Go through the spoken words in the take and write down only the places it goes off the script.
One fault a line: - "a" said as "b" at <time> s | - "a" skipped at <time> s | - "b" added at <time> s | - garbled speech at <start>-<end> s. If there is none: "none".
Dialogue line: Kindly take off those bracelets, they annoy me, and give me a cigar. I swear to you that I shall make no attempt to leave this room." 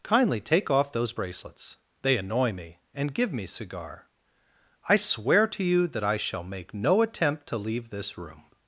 - "a" skipped at 3.4 s